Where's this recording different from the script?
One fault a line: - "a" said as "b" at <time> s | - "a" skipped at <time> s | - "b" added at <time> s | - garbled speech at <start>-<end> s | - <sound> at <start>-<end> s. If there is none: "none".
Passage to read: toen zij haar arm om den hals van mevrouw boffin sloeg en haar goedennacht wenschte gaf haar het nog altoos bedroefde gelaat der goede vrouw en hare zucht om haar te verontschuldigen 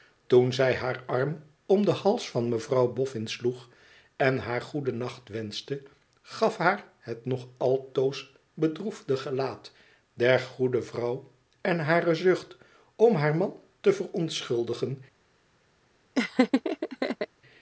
- "man" added at 13.4 s
- laugh at 16.1-17.3 s